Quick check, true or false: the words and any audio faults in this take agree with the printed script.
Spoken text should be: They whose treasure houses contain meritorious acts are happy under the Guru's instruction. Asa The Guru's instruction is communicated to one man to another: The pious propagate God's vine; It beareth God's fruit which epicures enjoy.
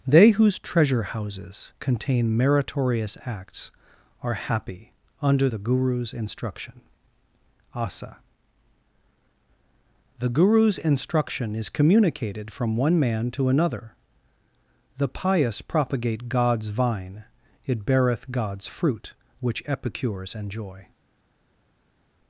false